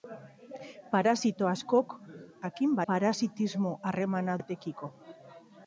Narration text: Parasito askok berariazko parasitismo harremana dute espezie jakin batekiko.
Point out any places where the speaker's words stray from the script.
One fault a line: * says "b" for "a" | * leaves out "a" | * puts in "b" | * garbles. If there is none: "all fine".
* says "jakin" for "berariazko"
* leaves out "dute espezie jakin"